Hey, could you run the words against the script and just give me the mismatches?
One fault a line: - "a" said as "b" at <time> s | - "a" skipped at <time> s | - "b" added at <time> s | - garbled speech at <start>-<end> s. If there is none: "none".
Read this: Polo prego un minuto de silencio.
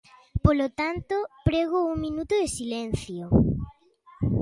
- "tanto" added at 0.7 s